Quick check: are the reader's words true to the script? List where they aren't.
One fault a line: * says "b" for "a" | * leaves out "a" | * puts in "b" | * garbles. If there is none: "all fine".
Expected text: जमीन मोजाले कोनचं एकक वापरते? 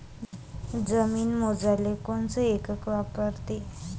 all fine